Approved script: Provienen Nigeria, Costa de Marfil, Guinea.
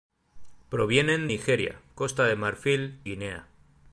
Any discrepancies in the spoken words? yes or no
no